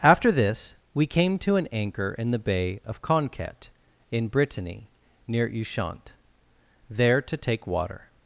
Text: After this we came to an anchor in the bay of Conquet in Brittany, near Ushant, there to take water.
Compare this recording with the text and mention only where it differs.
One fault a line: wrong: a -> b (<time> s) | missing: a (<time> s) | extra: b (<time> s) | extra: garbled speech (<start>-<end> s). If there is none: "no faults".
no faults